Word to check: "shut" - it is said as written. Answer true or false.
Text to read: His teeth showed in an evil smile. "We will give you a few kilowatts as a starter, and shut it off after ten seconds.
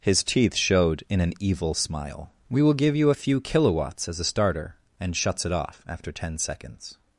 false